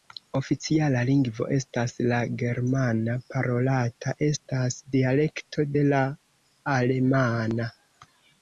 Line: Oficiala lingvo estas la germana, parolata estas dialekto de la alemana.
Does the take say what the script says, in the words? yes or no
yes